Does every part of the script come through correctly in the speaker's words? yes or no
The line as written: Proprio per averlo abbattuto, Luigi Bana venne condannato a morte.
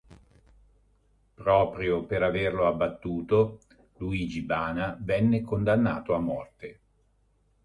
yes